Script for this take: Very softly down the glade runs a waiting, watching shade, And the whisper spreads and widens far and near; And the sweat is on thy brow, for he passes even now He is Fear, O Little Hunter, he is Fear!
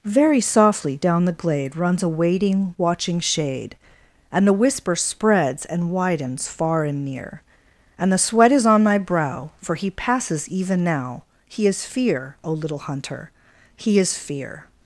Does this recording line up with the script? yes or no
no